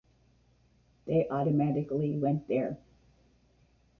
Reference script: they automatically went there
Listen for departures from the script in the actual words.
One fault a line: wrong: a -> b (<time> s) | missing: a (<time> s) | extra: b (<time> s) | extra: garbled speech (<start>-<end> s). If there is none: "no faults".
no faults